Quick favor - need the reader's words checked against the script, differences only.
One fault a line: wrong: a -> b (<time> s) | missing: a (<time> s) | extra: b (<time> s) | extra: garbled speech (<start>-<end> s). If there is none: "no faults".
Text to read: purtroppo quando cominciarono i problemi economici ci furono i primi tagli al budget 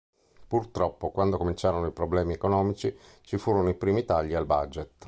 no faults